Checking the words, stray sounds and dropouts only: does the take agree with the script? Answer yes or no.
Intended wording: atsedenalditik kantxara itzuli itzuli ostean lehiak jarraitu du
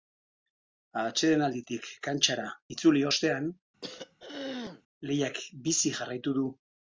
no